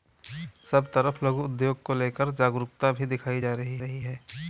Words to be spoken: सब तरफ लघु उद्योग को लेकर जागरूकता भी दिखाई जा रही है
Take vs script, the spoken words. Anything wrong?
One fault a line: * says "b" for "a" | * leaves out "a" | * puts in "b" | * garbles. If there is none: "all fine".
* puts in "रही"